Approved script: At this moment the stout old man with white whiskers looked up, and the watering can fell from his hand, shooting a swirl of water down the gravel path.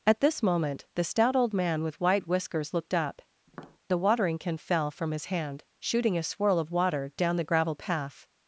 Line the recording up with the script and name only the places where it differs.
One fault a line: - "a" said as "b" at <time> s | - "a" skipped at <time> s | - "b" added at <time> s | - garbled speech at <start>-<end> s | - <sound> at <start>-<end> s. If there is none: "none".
- "and" skipped at 3.2 s
- tap at 3.5-3.8 s